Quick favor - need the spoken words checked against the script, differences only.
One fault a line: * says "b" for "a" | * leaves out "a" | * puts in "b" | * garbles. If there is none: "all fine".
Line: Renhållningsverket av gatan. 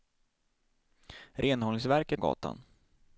all fine